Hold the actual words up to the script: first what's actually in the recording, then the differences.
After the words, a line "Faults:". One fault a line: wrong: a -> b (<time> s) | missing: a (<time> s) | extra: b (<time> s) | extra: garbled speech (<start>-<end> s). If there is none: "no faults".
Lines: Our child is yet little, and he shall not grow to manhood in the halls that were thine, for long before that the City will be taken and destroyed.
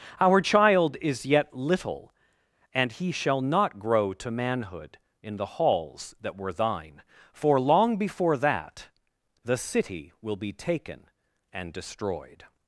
Our child is yet little, and he shall not grow to manhood in the halls that were thine, for long before that the City will be taken and destroyed.
Faults:
no faults